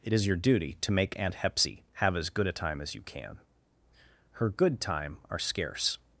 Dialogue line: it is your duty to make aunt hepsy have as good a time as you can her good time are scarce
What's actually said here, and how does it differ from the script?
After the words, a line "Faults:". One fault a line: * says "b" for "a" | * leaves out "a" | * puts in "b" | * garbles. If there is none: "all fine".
it is your duty to make aunt hepsy have as good a time as you can her good time are scarce
Faults:
all fine